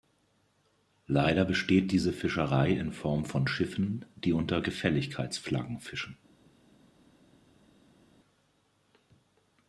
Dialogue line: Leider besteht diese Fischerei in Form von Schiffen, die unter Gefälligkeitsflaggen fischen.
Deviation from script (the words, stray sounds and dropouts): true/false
false